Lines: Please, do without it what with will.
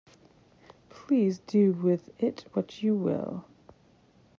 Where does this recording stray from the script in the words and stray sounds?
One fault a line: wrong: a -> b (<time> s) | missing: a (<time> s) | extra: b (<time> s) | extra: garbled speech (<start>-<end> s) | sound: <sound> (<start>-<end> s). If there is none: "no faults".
wrong: without -> with (1.7 s)
wrong: with -> you (2.8 s)